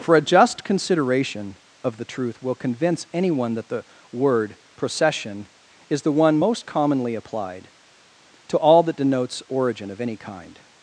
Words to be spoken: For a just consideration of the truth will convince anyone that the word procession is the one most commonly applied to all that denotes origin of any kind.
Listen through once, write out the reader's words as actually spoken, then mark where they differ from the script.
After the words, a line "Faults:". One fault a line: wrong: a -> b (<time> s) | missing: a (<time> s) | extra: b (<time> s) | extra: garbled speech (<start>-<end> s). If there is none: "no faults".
For a just consideration of the truth will convince anyone that the word procession is the one most commonly applied to all that denotes origin of any kind.
Faults:
no faults